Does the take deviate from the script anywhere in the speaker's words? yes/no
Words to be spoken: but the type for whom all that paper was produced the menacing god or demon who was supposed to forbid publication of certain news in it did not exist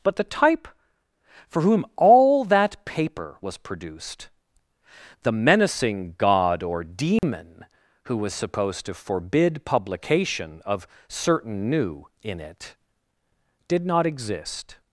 yes